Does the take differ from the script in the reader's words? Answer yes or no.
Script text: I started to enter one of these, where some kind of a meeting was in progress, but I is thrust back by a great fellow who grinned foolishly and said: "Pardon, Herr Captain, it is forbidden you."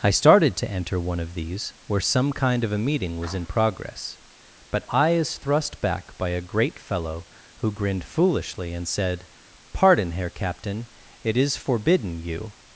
no